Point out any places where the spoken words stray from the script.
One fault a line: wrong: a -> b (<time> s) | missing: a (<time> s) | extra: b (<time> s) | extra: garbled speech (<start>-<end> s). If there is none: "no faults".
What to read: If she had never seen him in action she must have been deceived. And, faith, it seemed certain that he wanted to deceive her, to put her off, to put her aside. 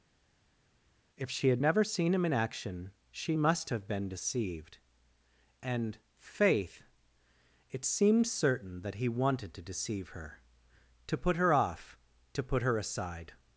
no faults